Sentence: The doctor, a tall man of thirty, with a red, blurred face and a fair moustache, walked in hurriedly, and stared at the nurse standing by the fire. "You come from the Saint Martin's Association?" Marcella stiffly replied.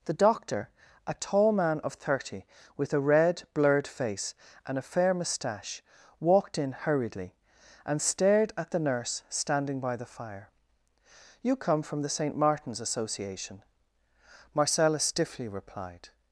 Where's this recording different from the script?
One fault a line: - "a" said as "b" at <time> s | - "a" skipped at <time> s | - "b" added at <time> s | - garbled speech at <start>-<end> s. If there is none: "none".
none